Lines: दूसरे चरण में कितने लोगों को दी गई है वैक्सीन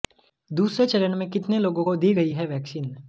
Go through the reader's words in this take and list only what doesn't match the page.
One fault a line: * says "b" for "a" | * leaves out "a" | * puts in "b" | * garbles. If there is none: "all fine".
all fine